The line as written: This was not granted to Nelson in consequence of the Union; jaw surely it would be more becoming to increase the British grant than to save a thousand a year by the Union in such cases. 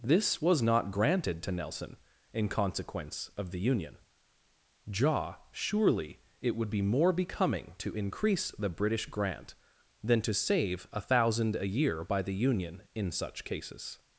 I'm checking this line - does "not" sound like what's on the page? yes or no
yes